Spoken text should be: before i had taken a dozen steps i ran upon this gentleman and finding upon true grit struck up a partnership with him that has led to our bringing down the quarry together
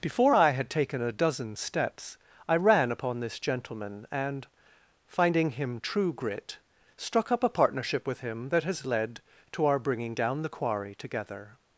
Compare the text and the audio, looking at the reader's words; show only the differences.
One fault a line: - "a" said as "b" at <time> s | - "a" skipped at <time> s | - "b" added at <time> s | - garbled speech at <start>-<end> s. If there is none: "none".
- "upon" said as "him" at 5.5 s